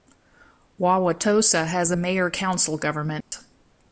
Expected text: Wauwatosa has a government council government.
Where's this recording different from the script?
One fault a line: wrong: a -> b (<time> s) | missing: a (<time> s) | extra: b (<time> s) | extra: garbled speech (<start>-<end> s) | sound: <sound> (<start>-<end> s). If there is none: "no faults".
wrong: government -> mayor (2.0 s)
sound: dropout (3.2-3.3 s)